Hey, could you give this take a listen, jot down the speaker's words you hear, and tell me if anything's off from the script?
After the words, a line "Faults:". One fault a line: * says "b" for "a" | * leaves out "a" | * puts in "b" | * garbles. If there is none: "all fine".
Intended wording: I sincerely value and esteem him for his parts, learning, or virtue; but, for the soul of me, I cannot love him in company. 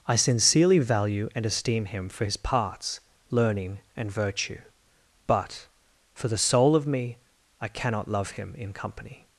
I sincerely value and esteem him for his parts, learning, and virtue; but, for the soul of me, I cannot love him in company.
Faults:
* says "and" for "or"